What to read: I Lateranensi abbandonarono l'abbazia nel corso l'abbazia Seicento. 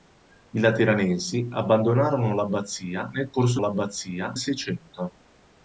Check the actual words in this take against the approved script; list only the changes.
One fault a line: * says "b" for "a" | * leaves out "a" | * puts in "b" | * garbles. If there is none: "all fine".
all fine